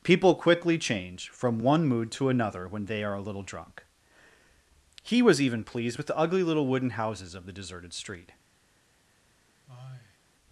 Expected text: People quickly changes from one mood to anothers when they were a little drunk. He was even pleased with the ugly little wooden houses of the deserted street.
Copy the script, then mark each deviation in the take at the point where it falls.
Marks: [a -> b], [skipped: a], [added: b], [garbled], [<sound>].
People quickly [changes -> change] from one mood to [anothers -> another] when they [were -> are] a little drunk. He was even pleased with the ugly little wooden houses of the deserted street. [sigh]